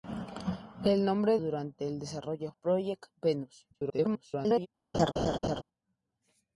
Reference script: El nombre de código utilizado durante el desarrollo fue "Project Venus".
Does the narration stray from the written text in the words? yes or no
yes